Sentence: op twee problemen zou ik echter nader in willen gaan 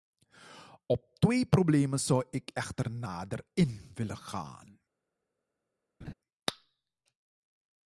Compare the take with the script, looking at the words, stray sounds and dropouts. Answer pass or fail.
fail